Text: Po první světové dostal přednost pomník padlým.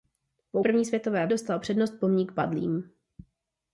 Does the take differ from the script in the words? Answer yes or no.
no